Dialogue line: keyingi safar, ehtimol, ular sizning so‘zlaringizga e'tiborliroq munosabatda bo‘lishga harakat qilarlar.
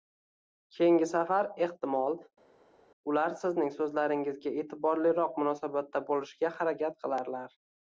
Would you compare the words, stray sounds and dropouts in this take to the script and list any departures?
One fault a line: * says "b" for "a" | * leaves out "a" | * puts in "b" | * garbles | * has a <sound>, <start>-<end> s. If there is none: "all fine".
all fine